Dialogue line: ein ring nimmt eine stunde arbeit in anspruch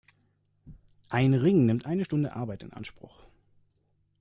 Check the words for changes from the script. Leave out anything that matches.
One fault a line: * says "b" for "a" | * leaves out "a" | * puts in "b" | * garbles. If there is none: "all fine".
all fine